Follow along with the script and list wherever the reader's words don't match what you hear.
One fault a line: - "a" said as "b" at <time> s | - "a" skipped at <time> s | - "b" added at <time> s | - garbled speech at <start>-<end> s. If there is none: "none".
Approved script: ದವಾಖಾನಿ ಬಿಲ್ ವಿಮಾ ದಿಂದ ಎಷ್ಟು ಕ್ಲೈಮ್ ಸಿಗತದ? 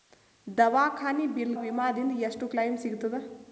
none